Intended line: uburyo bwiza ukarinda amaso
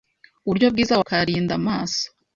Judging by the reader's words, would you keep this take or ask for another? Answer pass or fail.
pass